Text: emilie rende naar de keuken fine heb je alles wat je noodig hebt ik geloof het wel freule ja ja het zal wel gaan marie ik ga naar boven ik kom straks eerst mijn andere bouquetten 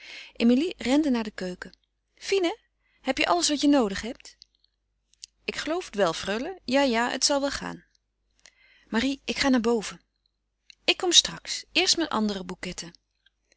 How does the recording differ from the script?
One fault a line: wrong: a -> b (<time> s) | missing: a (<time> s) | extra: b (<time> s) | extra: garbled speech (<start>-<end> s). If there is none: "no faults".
no faults